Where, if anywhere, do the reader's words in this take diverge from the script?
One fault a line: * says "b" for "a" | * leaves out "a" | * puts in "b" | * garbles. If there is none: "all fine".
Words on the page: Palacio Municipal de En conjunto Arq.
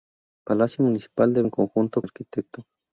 all fine